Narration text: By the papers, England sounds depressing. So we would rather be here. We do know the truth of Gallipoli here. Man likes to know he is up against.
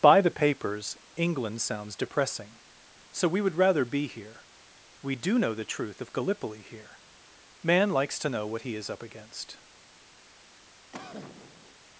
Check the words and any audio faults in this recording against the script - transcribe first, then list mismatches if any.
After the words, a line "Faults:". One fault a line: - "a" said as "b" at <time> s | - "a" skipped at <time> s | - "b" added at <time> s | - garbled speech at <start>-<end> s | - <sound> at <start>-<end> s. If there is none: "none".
By the papers, England sounds depressing. So we would rather be here. We do know the truth of Gallipoli here. Man likes to know what he is up against.
Faults:
- "what" added at 8.5 s
- cough at 10.9-11.8 s